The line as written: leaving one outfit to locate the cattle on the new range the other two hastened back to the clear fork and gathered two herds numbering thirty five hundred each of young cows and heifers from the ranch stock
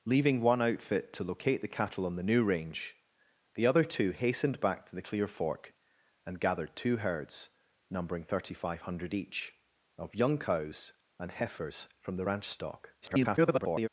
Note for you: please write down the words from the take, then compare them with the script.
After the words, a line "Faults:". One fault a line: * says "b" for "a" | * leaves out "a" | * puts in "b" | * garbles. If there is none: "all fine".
leaving one outfit to locate the cattle on the new range the other two hastened back to the clear fork and gathered two herds numbering thirty five hundred each of young cows and heifers from the ranch stock [garbled]
Faults:
* garbles